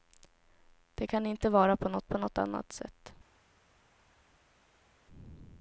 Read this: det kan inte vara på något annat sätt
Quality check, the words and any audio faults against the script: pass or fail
fail